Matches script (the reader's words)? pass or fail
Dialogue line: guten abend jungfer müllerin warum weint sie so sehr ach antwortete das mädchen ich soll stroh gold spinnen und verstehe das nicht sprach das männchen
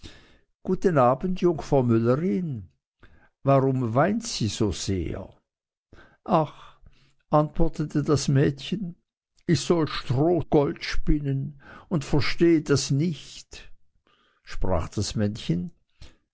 pass